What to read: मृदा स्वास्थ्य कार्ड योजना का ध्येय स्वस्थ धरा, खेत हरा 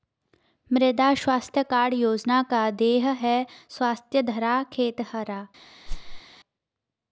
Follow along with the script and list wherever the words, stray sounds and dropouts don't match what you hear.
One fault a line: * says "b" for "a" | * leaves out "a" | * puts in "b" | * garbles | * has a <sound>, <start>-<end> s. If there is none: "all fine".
* puts in "है"
* has a whoosh, 5.9-6.2 s